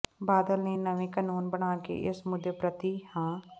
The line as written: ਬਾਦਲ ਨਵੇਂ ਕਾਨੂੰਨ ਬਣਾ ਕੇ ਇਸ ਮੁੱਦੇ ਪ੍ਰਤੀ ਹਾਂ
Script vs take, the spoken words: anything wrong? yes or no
yes